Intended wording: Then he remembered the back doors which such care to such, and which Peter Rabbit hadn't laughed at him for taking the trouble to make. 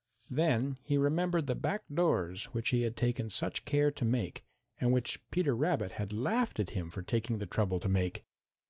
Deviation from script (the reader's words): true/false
true